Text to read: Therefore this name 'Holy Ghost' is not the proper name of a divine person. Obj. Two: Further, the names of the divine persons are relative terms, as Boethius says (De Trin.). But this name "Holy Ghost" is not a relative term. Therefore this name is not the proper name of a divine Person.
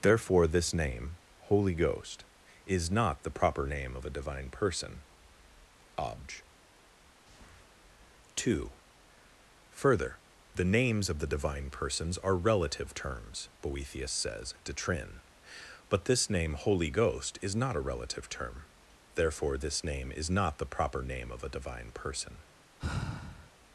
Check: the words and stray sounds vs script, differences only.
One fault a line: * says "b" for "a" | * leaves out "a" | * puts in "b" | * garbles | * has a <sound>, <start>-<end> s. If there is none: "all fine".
* leaves out "as"
* has a sigh, 22.8-23.5 s